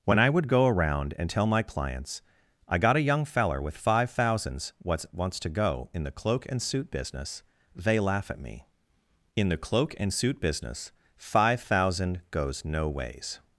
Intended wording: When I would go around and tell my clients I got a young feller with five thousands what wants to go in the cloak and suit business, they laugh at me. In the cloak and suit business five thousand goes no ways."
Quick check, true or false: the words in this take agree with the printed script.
true